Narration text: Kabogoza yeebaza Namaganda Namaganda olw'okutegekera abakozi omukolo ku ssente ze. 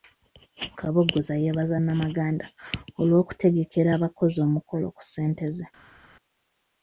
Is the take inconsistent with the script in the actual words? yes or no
yes